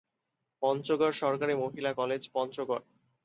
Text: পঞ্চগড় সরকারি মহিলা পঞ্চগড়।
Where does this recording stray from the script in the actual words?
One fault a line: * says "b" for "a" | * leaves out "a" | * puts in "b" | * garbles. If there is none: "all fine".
* puts in "কলেজ"